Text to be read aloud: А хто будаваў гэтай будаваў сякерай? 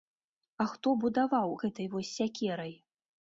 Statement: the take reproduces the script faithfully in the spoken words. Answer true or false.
false